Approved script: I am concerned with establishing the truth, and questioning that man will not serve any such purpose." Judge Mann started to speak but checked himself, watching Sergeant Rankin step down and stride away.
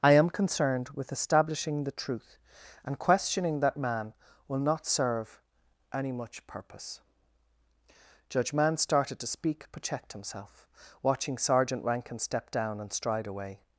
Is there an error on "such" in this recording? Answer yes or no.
yes